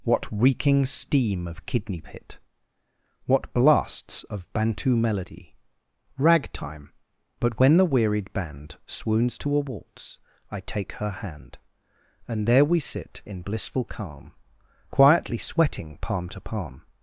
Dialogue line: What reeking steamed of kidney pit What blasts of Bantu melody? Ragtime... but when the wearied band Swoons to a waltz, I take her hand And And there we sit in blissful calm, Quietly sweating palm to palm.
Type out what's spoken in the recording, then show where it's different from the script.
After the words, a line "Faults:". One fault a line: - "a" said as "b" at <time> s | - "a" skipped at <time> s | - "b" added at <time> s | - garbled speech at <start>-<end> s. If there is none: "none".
What reeking steam of kidney pit What blasts of Bantu melody? Ragtime... but when the wearied band Swoons to a waltz, I take her hand And there we sit in blissful calm, Quietly sweating palm to palm.
Faults:
- "steamed" said as "steam" at 0.9 s
- "And" skipped at 12.5 s